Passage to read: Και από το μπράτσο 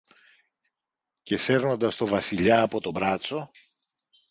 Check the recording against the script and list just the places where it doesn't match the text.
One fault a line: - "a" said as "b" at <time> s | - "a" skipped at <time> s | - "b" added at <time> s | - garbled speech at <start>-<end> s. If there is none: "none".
- "σέρνοντας το Βασιλιά" added at 1.4 s